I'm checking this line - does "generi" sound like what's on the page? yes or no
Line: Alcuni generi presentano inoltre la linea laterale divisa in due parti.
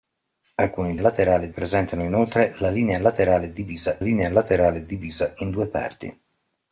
no